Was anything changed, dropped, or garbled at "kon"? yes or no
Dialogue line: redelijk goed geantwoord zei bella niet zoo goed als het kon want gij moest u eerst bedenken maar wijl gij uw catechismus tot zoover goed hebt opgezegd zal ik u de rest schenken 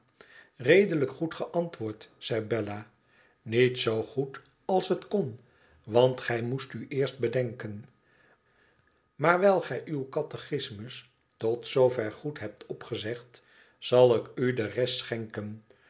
no